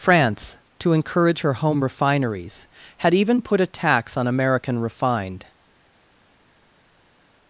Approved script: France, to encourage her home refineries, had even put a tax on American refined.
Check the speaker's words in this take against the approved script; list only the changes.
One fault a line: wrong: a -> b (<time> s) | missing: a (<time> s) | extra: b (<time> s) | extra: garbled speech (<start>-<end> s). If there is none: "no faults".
no faults